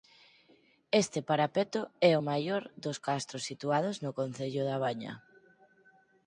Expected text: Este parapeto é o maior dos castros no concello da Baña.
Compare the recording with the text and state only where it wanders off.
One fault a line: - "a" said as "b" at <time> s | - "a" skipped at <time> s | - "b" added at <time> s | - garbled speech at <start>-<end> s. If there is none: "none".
- "situados" added at 3.5 s